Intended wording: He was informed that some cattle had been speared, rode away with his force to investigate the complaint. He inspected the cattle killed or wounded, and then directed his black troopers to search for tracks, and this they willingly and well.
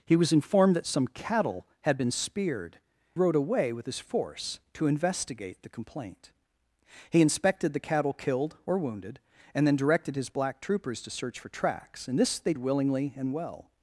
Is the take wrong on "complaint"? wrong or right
right